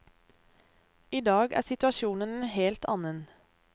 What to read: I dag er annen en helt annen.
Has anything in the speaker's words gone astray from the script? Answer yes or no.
yes